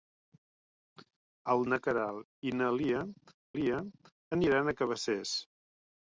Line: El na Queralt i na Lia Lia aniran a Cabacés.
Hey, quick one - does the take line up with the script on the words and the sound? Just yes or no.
yes